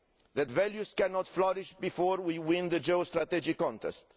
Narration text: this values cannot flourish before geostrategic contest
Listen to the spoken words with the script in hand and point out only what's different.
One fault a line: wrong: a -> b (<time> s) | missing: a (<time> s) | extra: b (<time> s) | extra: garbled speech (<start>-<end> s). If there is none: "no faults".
wrong: this -> that (0.3 s)
extra: we win the (2.2 s)